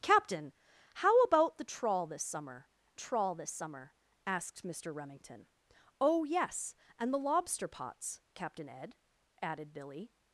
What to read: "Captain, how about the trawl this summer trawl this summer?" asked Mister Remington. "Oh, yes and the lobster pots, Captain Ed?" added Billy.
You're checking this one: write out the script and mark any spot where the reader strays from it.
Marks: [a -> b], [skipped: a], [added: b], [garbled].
"Captain, how about the trawl this summer trawl this summer?" asked Mister Remington. "Oh, yes and the lobster pots, Captain Ed?" added Billy.